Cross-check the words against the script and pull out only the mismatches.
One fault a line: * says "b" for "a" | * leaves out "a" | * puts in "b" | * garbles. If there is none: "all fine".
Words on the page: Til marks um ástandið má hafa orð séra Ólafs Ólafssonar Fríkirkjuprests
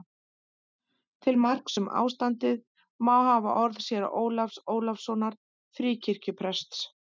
all fine